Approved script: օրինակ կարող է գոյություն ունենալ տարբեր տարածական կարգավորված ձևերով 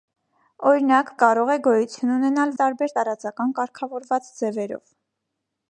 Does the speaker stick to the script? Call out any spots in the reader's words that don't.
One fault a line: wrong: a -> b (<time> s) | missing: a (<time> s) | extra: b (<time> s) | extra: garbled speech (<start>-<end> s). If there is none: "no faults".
no faults